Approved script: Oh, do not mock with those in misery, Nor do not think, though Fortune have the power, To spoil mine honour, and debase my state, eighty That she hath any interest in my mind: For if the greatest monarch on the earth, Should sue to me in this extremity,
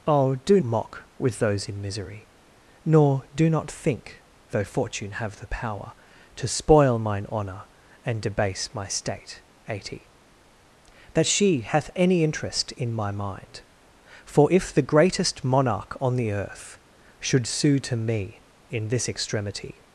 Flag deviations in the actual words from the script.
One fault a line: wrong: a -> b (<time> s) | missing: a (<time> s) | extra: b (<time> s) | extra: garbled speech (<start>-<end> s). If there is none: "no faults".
missing: not (0.6 s)